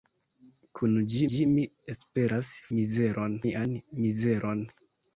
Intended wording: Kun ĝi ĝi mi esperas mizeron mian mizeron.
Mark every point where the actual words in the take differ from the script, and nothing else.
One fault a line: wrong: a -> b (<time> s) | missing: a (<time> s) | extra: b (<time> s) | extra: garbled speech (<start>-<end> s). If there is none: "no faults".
no faults